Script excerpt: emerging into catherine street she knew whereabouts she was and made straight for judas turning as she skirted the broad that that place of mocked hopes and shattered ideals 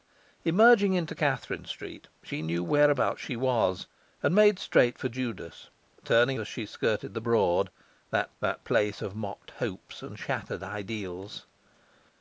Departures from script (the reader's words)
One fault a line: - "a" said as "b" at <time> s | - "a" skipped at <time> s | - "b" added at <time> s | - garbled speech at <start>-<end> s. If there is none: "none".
none